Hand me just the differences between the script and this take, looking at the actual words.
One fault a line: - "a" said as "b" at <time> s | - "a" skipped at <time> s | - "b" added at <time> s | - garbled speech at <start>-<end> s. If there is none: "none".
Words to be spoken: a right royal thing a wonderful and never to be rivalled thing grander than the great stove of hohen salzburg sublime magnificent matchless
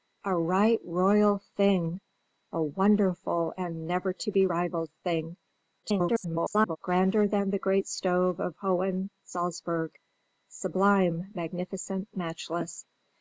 - garbled speech at 5.8-6.8 s